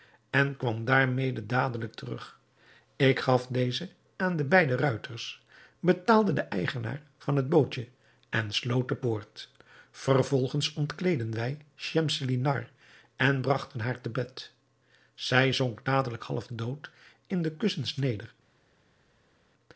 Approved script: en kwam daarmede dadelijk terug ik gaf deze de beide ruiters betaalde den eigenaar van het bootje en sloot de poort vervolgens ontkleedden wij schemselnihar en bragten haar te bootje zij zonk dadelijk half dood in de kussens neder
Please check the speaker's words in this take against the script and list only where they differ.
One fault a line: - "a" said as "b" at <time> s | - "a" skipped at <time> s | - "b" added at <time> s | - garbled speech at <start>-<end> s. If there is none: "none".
- "aan" added at 4.2 s
- "bootje" said as "bed" at 14.1 s